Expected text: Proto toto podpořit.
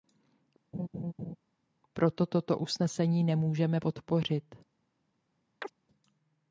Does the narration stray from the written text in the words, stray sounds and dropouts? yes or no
yes